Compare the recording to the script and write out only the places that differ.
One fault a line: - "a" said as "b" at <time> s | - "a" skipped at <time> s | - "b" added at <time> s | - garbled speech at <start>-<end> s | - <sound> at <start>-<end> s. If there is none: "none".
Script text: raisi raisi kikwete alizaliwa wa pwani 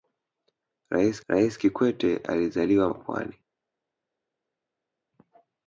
none